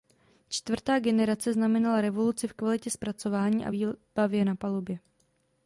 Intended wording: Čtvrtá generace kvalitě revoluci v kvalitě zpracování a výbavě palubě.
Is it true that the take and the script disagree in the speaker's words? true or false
true